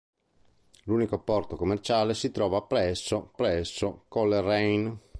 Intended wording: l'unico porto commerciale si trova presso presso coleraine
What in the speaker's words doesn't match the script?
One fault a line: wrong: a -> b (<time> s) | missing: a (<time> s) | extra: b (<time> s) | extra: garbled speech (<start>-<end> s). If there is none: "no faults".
no faults